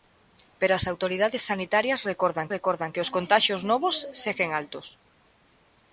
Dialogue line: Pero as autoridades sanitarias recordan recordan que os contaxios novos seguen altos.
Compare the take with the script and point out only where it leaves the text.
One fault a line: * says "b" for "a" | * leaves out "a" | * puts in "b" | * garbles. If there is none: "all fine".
all fine